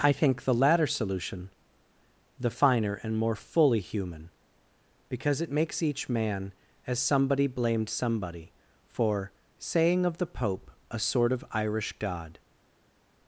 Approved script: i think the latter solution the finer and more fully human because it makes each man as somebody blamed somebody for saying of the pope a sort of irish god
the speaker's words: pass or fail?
pass